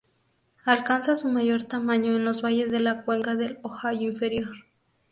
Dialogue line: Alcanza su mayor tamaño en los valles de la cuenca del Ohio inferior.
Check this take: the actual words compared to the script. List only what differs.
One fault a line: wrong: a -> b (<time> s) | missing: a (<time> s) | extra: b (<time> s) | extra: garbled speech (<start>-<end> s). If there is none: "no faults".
no faults